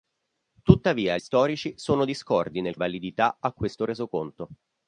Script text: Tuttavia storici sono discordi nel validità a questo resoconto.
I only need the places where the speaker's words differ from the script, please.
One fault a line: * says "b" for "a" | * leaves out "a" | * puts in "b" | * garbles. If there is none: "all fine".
all fine